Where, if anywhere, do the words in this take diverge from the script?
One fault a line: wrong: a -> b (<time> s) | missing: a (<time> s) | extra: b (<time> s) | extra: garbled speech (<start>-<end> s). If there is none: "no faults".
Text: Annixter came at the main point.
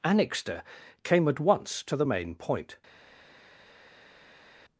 extra: once to (1.4 s)